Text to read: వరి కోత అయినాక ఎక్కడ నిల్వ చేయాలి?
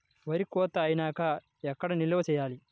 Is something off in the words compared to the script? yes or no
no